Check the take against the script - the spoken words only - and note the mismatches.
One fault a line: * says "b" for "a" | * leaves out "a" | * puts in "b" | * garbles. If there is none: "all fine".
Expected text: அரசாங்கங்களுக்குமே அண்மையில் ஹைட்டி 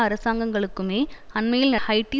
all fine